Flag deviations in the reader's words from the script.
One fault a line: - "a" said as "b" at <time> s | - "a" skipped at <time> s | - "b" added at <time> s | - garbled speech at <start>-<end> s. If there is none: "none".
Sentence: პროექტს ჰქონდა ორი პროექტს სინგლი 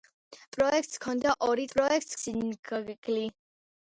none